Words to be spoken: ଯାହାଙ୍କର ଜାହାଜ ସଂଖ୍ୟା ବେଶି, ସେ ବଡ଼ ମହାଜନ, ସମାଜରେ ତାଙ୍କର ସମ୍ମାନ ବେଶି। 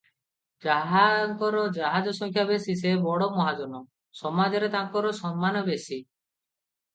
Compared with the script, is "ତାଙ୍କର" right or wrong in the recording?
right